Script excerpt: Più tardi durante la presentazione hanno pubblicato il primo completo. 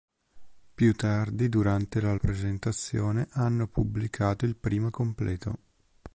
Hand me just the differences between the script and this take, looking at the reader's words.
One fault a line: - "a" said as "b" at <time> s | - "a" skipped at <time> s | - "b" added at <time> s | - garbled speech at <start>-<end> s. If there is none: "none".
none